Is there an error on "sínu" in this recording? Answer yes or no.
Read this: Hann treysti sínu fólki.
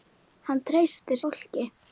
yes